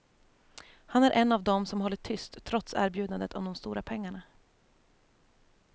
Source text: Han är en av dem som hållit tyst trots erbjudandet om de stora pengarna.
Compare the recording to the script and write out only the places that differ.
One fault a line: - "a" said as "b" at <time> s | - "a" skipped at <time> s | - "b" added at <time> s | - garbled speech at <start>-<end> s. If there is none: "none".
none